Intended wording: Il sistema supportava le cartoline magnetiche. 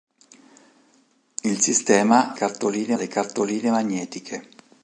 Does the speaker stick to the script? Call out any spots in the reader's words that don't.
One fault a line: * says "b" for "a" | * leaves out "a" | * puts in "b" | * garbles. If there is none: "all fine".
* says "cartoline" for "supportava"